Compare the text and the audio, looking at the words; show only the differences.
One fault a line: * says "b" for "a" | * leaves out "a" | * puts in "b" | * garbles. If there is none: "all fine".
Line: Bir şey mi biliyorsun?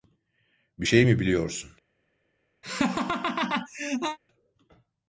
all fine